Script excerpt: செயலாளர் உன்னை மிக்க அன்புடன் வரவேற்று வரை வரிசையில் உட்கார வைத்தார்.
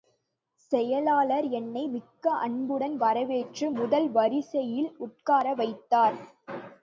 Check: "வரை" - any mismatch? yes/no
yes